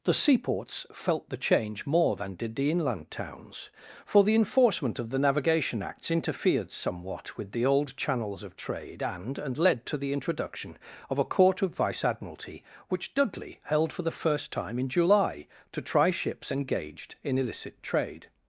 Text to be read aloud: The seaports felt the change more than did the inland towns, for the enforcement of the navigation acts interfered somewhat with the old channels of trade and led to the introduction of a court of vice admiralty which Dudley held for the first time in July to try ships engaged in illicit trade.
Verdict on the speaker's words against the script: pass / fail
fail